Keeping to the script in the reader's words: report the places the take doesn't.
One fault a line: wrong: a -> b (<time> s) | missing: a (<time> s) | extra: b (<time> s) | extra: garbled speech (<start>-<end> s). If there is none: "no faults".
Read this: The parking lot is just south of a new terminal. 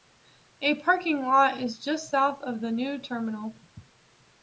wrong: The -> A (0.6 s)
wrong: a -> the (2.6 s)